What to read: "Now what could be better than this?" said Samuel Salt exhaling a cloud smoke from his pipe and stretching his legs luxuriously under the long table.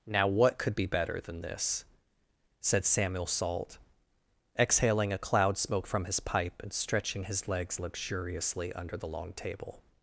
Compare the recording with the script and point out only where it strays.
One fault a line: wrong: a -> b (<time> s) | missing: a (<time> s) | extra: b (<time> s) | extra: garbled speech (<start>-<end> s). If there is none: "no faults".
no faults